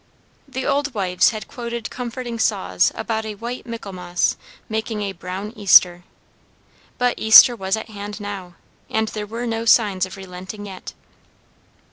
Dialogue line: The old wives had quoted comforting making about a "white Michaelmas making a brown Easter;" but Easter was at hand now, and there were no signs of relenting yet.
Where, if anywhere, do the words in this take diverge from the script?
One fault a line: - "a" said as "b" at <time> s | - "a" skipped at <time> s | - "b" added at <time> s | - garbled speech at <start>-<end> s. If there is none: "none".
- "making" said as "saws" at 2.4 s